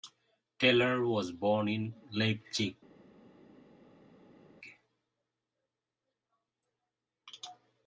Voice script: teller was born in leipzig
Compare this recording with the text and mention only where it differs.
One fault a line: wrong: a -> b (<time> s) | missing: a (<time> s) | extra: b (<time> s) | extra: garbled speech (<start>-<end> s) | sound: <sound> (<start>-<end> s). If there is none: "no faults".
no faults